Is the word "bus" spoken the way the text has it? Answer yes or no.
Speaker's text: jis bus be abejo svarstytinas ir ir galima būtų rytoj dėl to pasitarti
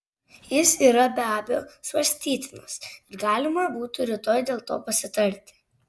no